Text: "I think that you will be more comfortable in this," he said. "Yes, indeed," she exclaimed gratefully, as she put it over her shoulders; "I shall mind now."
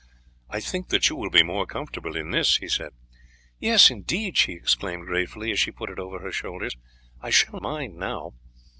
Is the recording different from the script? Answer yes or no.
no